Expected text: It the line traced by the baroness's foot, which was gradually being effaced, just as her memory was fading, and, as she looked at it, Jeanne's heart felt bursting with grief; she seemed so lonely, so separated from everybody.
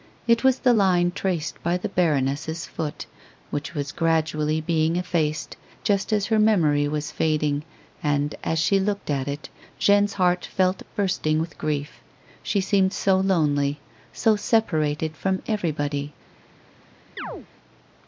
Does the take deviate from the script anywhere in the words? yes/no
yes